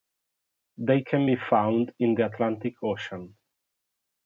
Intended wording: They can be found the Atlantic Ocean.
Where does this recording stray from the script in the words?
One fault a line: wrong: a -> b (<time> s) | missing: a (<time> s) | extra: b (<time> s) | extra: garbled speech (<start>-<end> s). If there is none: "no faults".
extra: in (2.0 s)